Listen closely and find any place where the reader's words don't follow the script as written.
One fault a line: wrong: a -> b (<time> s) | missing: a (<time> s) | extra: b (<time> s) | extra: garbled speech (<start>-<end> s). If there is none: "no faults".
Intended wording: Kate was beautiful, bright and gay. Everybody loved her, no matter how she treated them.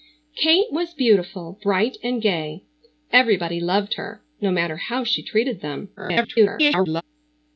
extra: garbled speech (6.0-7.0 s)